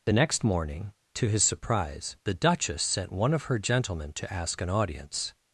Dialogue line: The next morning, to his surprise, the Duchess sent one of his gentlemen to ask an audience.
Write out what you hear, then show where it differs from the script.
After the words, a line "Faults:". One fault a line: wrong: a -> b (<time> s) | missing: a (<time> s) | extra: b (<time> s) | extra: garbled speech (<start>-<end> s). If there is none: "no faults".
The next morning, to his surprise, the Duchess sent one of her gentlemen to ask an audience.
Faults:
wrong: his -> her (3.4 s)